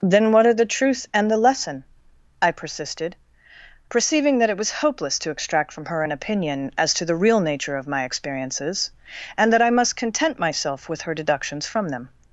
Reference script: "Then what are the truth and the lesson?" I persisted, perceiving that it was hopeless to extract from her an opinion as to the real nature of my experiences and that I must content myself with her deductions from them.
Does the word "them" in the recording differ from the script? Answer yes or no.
no